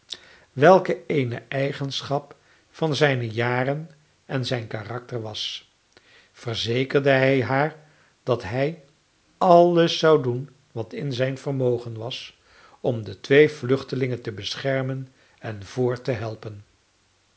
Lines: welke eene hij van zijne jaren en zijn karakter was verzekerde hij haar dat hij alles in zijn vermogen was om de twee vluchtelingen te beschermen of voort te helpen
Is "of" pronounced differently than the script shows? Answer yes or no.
yes